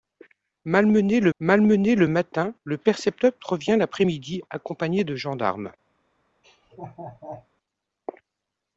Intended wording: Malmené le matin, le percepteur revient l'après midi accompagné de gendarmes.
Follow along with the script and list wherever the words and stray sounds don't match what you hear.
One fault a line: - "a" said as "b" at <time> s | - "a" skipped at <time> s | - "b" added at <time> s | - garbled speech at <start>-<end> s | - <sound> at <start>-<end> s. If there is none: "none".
- "malmené le" added at 1.4 s
- laugh at 6.4-7.5 s